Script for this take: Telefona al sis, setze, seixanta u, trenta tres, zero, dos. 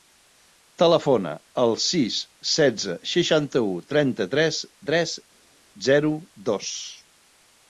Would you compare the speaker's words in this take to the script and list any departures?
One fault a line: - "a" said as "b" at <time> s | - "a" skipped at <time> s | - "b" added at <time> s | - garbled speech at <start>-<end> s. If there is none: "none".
- "tres" added at 4.9 s